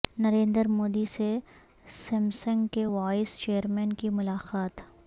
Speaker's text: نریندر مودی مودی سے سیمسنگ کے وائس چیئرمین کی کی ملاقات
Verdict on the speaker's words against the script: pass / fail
fail